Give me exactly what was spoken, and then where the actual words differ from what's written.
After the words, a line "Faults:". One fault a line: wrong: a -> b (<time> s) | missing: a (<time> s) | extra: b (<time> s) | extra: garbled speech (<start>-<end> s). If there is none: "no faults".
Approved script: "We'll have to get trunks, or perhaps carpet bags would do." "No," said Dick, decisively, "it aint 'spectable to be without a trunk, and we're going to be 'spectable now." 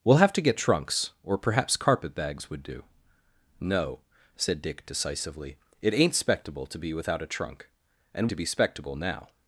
"We'll have to get trunks, or perhaps carpet bags would do." "No," said Dick, decisively, "it aint 'spectable to be without a trunk, and to be 'spectable now."
Faults:
missing: we're going (8.3 s)